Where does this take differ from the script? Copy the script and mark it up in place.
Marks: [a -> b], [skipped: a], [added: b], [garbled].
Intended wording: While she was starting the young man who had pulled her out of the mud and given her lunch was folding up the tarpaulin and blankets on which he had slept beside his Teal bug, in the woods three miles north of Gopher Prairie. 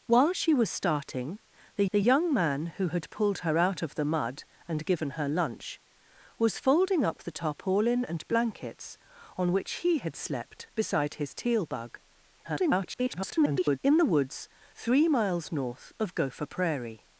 While she was starting the [added: the] young man who had pulled her out of the mud and given her lunch was folding up the tarpaulin and blankets on which he had slept beside his Teal bug, [garbled] in the woods three miles north of Gopher Prairie.